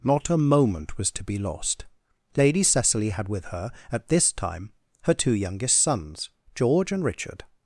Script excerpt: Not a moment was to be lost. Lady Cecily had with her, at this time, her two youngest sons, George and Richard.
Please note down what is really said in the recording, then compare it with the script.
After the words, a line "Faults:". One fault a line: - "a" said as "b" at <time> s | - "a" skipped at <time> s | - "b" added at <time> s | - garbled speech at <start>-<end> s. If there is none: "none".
Not a moment was to be lost. Lady Cecily had with her, at this time, her two youngest sons, George and Richard.
Faults:
none